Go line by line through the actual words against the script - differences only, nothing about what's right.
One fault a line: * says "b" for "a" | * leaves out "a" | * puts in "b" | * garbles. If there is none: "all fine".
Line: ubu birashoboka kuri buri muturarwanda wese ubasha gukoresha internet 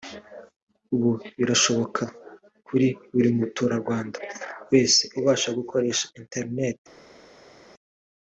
all fine